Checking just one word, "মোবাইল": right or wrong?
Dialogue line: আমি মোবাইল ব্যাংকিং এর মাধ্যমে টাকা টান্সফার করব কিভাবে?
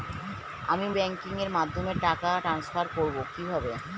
wrong